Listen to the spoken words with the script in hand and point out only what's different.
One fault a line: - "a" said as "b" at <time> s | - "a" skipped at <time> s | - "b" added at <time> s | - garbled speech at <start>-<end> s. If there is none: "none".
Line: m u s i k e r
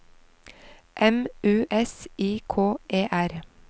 none